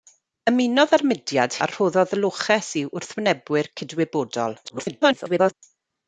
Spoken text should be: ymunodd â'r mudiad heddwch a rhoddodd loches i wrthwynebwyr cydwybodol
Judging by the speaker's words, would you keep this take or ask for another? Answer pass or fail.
fail